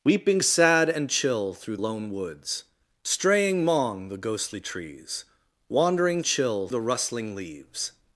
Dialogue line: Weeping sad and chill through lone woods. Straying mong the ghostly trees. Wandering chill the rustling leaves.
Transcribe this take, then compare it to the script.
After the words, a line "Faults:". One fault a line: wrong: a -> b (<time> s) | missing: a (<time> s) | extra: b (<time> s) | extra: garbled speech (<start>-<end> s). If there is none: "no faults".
Weeping sad and chill through lone woods. Straying mong the ghostly trees. Wandering chill the rustling leaves.
Faults:
no faults